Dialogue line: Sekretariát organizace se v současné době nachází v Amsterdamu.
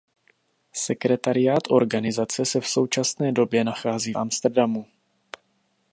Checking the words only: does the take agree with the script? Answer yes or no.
no